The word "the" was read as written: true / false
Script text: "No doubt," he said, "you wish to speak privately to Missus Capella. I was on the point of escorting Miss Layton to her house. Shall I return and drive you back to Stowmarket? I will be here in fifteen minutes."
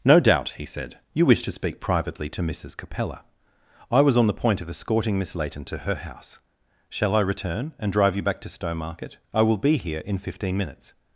true